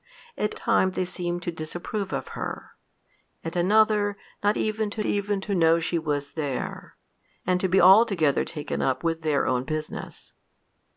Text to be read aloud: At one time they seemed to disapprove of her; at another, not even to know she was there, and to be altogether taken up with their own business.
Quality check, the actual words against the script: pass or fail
fail